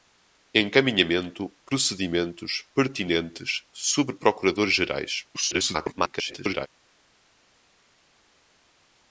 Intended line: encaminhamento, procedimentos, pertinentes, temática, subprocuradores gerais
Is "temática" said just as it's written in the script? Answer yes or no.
no